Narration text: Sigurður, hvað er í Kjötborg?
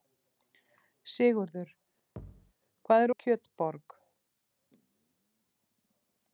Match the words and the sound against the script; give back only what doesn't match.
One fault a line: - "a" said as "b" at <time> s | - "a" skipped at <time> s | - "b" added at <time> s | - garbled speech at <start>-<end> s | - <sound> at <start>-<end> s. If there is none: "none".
- thud at 2.2-2.5 s